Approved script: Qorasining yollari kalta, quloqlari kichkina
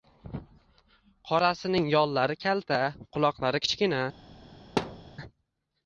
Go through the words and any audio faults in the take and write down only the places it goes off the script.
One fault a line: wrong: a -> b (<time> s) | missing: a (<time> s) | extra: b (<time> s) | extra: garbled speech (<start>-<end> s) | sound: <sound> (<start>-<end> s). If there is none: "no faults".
sound: thud (4.8-5.1 s)